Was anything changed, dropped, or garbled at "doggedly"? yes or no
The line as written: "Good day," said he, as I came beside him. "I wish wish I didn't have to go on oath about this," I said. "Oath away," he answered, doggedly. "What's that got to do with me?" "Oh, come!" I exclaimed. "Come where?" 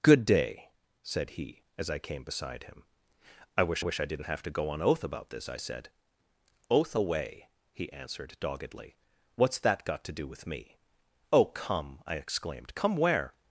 no